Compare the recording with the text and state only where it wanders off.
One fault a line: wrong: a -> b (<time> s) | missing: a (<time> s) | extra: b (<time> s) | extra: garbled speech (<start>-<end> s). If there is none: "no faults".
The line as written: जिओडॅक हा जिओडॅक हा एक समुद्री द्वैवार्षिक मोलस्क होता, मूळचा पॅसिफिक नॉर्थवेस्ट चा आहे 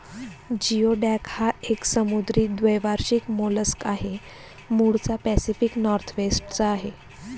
missing: जिओडॅक हा (1.5 s)
wrong: होता -> आहे (3.9 s)